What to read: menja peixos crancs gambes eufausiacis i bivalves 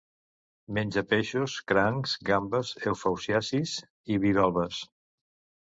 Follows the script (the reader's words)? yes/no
yes